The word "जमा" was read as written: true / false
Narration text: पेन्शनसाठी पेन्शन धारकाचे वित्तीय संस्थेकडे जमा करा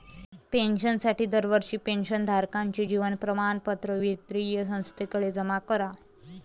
true